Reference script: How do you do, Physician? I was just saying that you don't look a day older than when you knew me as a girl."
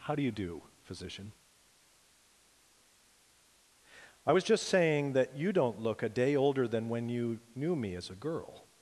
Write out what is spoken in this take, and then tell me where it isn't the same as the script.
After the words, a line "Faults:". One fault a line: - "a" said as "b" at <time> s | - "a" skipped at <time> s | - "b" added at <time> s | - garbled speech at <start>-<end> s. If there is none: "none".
How do you do, Physician? I was just saying that you don't look a day older than when you knew me as a girl."
Faults:
none